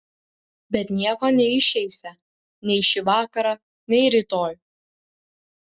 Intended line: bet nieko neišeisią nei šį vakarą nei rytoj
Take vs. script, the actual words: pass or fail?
pass